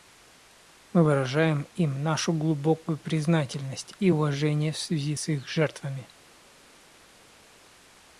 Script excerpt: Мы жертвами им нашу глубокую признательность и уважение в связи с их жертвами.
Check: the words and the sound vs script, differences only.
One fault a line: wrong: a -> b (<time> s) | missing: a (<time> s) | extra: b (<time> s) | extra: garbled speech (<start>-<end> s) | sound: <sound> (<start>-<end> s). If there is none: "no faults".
wrong: жертвами -> выражаем (1.0 s)